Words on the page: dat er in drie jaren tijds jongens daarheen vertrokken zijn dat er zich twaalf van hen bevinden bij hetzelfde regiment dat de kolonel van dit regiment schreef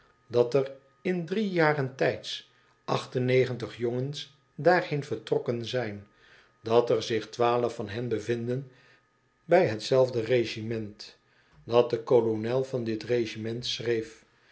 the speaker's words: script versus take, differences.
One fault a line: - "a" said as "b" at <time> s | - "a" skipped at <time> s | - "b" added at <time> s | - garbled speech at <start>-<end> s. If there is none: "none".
none